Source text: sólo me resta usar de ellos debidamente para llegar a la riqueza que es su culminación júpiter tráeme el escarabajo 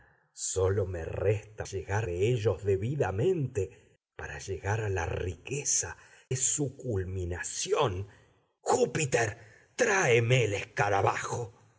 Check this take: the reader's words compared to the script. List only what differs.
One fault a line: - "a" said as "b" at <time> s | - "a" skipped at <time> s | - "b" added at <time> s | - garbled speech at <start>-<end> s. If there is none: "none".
- "usar" said as "llegar" at 1.6 s
- "que" skipped at 6.0 s